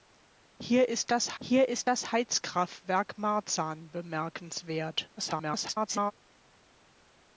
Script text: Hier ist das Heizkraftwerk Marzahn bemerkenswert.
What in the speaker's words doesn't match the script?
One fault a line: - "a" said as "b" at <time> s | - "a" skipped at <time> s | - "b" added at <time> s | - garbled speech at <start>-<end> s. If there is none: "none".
- "hier ist das" added at 1.4 s
- garbled speech at 5.2-6.1 s